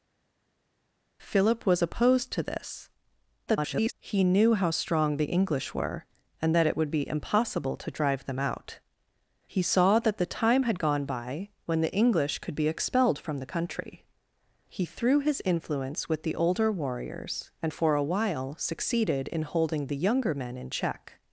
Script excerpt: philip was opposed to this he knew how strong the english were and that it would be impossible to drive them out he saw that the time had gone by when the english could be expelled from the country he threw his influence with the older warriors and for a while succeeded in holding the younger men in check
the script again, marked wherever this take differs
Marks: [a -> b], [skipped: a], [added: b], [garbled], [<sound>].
philip was opposed to this [garbled] he knew how strong the english were and that it would be impossible to drive them out he saw that the time had gone by when the english could be expelled from the country he threw his influence with the older warriors and for a while succeeded in holding the younger men in check